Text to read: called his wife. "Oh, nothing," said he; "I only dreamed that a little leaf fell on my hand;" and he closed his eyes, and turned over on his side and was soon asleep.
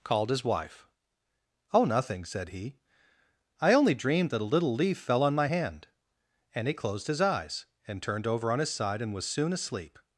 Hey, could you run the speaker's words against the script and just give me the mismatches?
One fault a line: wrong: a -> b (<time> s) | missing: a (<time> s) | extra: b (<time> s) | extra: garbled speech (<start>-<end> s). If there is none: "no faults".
no faults